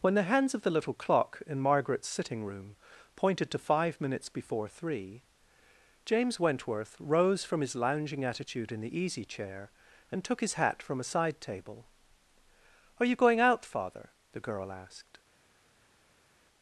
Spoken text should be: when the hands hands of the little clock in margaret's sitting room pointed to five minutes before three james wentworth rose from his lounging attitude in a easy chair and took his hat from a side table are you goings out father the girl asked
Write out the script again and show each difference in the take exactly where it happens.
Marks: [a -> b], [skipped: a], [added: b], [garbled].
when the hands [skipped: hands] of the little clock in margaret's sitting room pointed to five minutes before three james wentworth rose from his lounging attitude in [a -> the] easy chair and took his hat from a side table are you [goings -> going] out father the girl asked